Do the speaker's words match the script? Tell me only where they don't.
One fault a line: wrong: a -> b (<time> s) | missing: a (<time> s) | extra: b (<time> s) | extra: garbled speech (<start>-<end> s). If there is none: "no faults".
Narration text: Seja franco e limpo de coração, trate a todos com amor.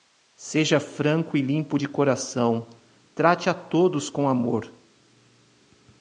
no faults